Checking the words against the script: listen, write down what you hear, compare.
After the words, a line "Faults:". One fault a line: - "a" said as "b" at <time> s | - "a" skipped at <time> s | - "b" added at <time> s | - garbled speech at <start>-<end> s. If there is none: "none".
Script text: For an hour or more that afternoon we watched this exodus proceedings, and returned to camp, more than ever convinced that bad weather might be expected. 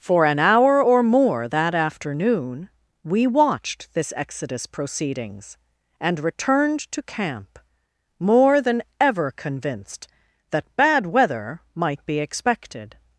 For an hour or more that afternoon we watched this exodus proceedings, and returned to camp, more than ever convinced that bad weather might be expected.
Faults:
none